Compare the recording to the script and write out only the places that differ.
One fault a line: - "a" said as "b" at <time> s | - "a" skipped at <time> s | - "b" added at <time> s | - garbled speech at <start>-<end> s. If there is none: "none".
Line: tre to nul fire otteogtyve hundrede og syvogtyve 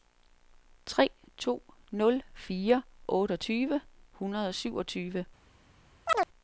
none